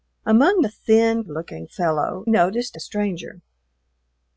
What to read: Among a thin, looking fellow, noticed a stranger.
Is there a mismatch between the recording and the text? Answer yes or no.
no